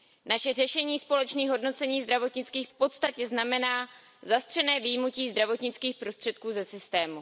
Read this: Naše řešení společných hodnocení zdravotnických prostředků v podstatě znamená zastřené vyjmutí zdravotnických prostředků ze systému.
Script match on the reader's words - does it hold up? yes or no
no